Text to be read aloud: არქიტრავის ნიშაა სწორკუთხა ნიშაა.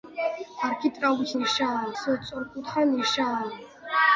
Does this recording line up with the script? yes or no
yes